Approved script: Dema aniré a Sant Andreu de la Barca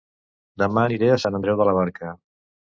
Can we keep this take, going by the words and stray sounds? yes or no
yes